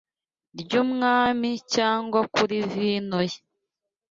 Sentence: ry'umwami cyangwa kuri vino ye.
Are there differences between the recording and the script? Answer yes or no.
no